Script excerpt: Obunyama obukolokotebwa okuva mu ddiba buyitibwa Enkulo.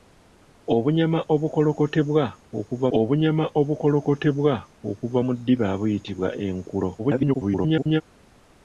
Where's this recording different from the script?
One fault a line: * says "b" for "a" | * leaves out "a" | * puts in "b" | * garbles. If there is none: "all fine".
* puts in "obunyama obukolokotebwa okuva"
* garbles